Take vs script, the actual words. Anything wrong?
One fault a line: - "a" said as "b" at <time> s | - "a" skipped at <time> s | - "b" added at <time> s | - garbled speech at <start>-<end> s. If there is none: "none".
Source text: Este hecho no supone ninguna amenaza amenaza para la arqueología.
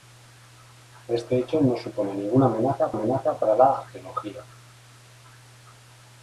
none